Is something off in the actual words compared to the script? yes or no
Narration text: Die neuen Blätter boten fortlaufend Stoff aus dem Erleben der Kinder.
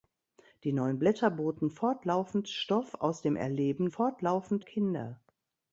yes